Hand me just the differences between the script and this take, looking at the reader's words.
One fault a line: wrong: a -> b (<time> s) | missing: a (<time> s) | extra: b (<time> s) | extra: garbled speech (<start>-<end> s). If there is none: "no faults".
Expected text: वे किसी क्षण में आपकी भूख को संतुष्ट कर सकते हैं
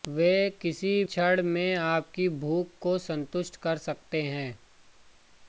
no faults